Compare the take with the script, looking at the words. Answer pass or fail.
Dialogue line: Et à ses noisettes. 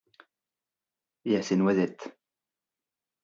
pass